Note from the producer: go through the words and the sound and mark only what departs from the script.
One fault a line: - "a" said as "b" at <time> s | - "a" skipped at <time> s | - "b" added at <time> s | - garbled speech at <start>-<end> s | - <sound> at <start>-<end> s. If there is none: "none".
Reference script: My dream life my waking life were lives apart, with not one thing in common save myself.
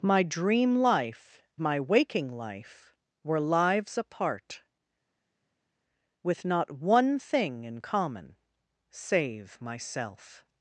none